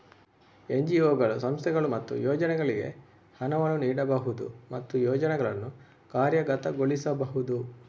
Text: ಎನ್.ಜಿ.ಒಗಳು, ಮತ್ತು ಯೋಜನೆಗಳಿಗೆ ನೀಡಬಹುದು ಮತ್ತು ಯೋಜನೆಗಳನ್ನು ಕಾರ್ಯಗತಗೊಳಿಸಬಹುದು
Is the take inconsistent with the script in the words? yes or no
yes